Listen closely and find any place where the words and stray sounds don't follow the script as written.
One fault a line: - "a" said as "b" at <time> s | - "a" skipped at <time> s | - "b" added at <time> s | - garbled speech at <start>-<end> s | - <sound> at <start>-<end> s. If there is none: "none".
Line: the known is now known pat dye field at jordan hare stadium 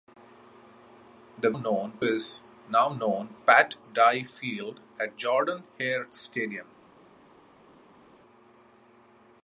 none